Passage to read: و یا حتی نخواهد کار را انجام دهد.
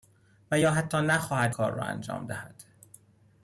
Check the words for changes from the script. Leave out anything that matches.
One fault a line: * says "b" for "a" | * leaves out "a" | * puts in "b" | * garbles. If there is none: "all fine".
all fine